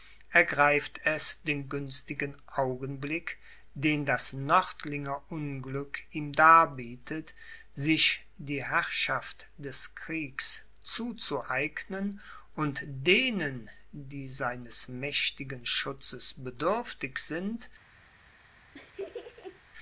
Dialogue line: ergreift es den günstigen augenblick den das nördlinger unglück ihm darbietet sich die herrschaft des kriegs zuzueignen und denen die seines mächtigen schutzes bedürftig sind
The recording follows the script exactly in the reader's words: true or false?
true